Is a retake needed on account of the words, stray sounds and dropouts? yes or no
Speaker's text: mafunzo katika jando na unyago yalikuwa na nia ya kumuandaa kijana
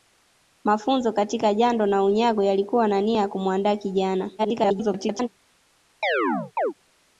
yes